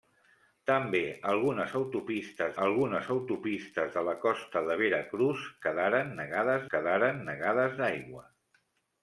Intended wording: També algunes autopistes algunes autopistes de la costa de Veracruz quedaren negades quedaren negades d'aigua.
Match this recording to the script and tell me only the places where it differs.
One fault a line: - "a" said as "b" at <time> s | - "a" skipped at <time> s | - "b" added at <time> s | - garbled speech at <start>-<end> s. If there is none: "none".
none